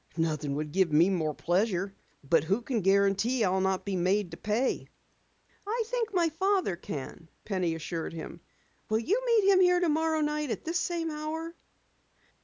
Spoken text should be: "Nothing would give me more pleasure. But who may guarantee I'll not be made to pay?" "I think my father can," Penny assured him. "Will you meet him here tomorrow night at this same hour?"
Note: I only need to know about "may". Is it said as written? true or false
false